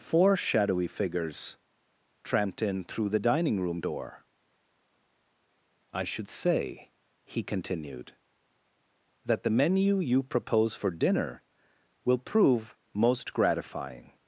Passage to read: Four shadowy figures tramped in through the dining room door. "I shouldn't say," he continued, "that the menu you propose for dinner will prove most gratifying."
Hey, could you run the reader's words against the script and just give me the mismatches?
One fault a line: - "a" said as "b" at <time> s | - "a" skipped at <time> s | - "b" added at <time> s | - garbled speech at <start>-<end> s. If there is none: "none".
- "shouldn't" said as "should" at 6.0 s